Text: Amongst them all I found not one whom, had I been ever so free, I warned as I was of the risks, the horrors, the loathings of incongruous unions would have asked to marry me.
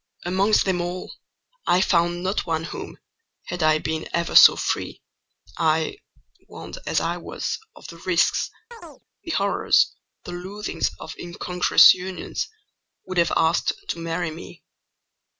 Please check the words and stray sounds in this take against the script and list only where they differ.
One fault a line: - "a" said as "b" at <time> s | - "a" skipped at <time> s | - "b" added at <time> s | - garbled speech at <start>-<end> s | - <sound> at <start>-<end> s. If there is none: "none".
- chirp at 8.7-9.0 s